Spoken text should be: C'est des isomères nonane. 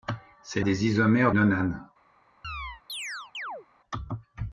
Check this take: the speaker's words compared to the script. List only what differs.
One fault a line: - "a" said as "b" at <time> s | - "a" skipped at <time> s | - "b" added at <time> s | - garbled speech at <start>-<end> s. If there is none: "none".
none